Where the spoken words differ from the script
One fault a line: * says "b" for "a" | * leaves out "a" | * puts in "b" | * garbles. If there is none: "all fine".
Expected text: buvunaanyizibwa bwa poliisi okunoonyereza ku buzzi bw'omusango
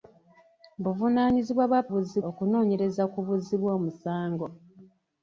* says "buzzi" for "poliisi"